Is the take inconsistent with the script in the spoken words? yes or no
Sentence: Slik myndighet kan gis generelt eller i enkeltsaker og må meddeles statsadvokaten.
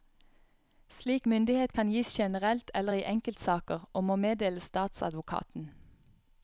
no